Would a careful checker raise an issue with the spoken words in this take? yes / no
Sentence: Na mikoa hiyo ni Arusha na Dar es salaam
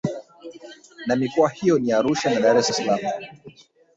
yes